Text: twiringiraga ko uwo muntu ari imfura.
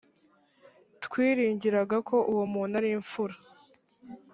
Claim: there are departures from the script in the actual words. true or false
false